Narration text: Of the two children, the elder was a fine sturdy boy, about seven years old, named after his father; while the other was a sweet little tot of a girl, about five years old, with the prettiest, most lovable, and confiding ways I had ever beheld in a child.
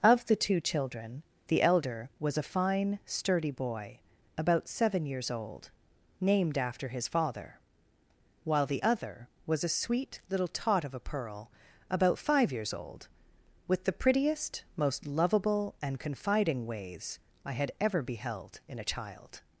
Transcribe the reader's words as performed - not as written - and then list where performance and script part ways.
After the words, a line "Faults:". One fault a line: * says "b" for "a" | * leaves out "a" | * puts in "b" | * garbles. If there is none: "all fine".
Of the two children, the elder was a fine sturdy boy, about seven years old, named after his father; while the other was a sweet little tot of a pearl, about five years old, with the prettiest, most lovable, and confiding ways I had ever beheld in a child.
Faults:
* says "pearl" for "girl"